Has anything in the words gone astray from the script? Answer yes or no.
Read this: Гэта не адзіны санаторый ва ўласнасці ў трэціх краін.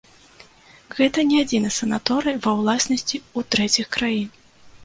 no